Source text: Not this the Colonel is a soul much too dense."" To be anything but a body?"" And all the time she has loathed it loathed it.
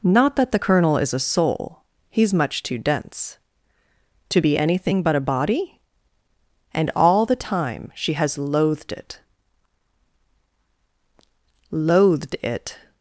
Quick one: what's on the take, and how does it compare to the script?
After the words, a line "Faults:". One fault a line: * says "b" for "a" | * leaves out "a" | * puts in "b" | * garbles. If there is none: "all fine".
Not that the Colonel is a soul he's much too dense."" To be anything but a body?"" And all the time she has loathed it loathed it.
Faults:
* says "that" for "this"
* puts in "he's"